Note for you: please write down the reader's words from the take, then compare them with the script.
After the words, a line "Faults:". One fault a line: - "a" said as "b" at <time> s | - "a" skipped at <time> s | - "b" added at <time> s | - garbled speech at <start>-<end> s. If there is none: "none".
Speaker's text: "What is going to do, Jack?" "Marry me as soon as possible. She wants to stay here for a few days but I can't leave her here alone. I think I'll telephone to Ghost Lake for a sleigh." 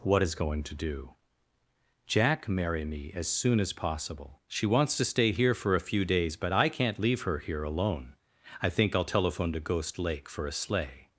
"What is going to do, Jack?" "Marry me as soon as possible. She wants to stay here for a few days but I can't leave her here alone. I think I'll telephone to Ghost Lake for a sleigh."
Faults:
none